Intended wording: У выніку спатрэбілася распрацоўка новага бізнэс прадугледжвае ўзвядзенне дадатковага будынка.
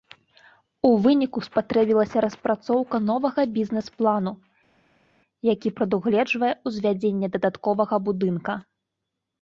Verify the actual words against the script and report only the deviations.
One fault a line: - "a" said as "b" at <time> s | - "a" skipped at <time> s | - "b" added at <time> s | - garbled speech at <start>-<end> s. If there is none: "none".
- "плану які" added at 4.0 s